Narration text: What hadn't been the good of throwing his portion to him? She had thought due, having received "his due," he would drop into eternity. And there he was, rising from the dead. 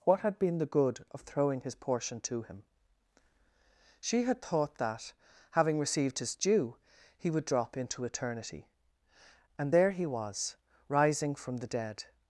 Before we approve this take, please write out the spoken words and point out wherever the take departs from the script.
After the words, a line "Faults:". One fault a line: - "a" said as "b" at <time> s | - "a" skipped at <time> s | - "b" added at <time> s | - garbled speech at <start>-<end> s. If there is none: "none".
What had been the good of throwing his portion to him? She had thought that, having received "his due," he would drop into eternity. And there he was, rising from the dead.
Faults:
- "hadn't" said as "had" at 0.2 s
- "due" said as "that" at 4.8 s